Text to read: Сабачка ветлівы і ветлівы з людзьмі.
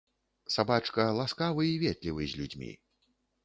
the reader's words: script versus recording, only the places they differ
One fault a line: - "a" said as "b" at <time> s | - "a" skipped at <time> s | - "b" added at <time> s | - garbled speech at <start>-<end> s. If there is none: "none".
- "ветлівы" said as "ласкавы" at 1.2 s